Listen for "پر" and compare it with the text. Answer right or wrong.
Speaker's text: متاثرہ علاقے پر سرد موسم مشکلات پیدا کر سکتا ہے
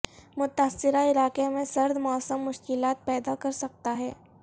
wrong